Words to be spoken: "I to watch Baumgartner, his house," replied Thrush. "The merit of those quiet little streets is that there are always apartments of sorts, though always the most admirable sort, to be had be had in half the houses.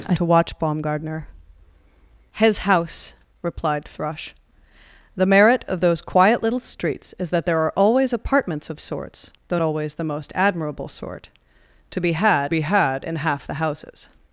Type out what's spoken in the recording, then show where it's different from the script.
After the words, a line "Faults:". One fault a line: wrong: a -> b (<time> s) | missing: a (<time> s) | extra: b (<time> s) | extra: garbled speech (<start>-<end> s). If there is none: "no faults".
"I to watch Baumgartner, his house," replied Thrush. "The merit of those quiet little streets is that there are always apartments of sorts, though always the most admirable sort, to be had be had in half the houses.
Faults:
no faults